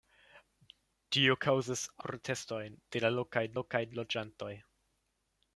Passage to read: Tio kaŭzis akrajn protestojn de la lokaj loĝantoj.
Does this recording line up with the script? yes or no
no